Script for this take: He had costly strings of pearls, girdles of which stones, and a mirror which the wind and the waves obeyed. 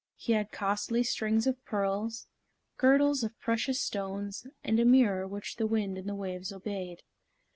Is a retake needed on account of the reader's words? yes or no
yes